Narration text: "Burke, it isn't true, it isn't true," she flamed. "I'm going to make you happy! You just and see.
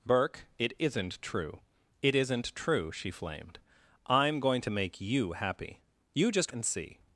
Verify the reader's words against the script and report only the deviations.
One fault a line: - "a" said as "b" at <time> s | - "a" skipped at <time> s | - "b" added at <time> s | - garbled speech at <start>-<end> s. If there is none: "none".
none